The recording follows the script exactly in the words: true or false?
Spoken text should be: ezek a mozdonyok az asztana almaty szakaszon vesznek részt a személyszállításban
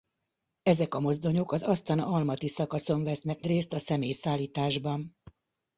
true